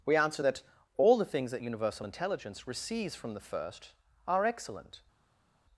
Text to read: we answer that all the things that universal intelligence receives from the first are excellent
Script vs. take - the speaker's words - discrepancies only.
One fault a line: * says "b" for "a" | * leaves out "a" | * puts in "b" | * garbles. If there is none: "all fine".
all fine